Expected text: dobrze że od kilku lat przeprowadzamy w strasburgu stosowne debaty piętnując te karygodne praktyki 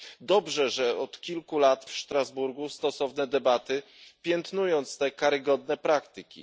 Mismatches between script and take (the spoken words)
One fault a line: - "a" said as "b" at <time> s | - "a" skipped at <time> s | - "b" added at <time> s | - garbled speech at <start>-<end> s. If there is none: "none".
- "przeprowadzamy" skipped at 1.9 s